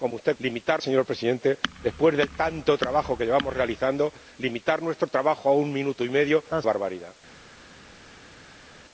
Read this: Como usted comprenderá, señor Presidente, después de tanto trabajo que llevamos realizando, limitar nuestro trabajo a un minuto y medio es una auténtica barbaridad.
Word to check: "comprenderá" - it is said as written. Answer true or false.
false